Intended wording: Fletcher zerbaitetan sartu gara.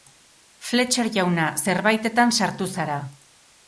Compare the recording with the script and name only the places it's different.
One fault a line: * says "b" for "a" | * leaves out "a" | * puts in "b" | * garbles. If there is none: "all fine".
* puts in "jauna"
* says "zara" for "gara"